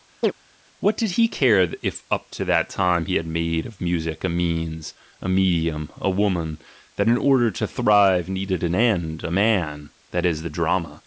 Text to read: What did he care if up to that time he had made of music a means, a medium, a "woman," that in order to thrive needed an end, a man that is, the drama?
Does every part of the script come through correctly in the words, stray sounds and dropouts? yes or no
no